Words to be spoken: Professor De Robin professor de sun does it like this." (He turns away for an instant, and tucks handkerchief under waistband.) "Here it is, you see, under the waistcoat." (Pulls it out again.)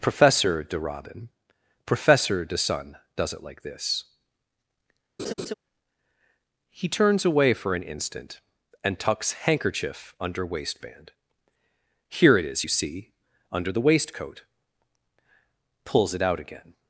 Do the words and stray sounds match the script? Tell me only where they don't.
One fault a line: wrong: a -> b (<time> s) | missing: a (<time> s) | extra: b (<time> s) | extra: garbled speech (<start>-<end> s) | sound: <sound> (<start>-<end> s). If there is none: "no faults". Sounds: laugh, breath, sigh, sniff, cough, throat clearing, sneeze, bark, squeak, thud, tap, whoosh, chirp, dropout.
sound: laugh (5.2-5.5 s)